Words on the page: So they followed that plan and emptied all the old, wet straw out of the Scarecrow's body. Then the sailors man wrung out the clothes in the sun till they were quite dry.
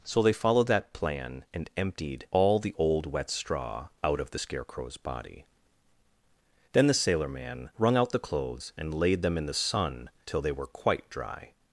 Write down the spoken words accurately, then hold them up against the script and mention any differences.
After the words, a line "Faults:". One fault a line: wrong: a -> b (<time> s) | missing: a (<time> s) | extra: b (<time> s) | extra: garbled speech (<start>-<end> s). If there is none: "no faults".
So they followed that plan and emptied all the old, wet straw out of the Scarecrow's body. Then the sailor man wrung out the clothes and laid them in the sun till they were quite dry.
Faults:
wrong: sailors -> sailor (6.9 s)
extra: and laid them (8.8 s)